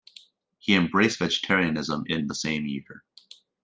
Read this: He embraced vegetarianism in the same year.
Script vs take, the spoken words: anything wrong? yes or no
no